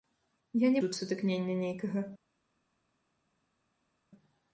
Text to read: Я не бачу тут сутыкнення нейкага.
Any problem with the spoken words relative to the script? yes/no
yes